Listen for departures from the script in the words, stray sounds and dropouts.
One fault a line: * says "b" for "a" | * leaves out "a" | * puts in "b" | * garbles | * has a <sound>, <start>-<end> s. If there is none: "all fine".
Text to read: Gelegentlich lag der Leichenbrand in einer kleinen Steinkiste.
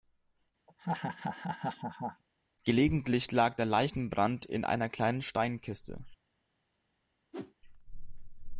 * has a laugh, 0.7-2.2 s
* has a whoosh, 7.3-7.5 s